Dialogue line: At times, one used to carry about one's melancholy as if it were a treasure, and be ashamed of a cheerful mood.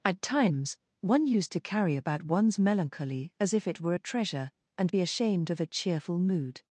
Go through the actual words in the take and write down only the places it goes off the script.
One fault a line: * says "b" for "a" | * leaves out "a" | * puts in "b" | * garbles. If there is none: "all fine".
all fine